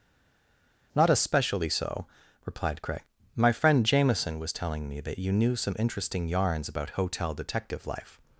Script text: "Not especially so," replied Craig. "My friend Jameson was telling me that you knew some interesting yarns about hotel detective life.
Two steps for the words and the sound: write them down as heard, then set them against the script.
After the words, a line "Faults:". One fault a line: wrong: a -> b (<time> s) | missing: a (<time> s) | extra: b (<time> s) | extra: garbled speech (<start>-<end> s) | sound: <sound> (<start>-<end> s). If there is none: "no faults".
"Not especially so," replied Craig. "My friend Jameson was telling me that you knew some interesting yarns about hotel detective life.
Faults:
no faults